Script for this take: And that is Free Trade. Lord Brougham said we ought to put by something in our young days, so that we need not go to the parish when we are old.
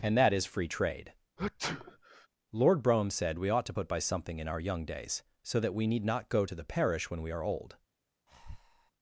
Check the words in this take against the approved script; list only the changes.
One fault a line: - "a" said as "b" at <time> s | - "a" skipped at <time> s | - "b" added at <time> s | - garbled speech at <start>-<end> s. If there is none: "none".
none